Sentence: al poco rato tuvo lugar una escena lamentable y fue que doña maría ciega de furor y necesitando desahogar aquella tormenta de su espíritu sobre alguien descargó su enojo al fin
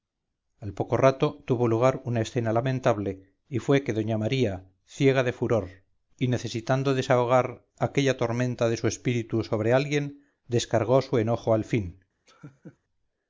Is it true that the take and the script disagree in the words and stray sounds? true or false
true